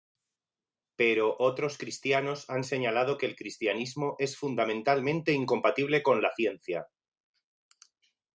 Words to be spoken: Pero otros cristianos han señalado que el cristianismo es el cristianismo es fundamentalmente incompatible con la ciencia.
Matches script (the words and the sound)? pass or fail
fail